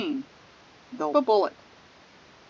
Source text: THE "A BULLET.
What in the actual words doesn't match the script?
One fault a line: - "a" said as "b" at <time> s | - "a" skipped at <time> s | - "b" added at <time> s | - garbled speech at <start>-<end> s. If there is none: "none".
none